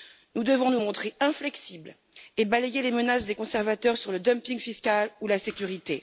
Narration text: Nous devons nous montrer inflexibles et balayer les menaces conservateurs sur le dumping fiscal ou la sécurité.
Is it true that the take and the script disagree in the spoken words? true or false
true